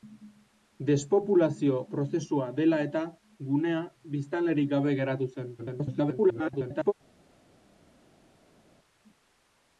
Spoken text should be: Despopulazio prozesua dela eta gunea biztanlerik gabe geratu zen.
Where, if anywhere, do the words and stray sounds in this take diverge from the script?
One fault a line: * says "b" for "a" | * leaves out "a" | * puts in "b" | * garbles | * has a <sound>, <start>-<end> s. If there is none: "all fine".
* garbles